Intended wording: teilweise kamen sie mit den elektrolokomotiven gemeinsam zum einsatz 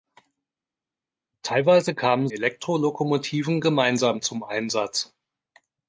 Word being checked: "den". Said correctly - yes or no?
no